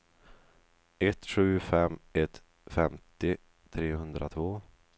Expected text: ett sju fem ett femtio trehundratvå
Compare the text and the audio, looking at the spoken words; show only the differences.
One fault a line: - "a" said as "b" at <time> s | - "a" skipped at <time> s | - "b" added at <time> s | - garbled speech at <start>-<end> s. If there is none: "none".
none